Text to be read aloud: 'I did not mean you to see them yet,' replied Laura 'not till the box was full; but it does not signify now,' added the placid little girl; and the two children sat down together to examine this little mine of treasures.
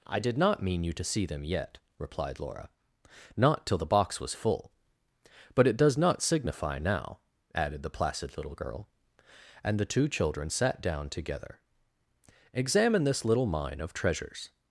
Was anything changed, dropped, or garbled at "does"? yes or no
no